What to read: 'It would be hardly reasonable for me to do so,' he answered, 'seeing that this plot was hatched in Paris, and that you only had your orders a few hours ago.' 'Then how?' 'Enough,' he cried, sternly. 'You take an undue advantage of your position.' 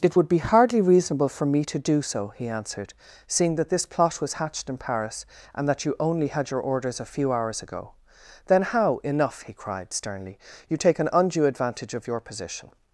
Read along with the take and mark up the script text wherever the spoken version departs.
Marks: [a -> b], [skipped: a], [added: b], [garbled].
'It would be hardly reasonable for me to do so,' he answered, 'seeing that this plot was hatched in Paris, and that you only had your orders a few hours ago.' 'Then how?' 'Enough,' he cried, sternly. 'You take an undue advantage of your position.'